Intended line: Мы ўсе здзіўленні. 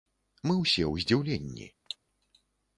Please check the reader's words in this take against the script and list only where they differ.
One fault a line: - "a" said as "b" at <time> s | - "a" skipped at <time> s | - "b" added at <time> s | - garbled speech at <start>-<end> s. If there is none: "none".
- "ў" added at 0.9 s